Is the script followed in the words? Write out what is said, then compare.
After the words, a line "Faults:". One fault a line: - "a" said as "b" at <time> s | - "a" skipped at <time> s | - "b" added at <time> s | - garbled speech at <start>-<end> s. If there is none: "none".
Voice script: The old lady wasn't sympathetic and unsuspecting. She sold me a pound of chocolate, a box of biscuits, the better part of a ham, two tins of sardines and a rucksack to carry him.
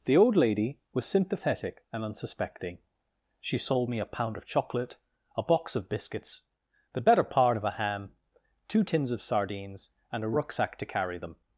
The old lady was sympathetic and unsuspecting. She sold me a pound of chocolate, a box of biscuits, the better part of a ham, two tins of sardines and a rucksack to carry them.
Faults:
- "wasn't" said as "was" at 0.9 s
- "him" said as "them" at 11.2 s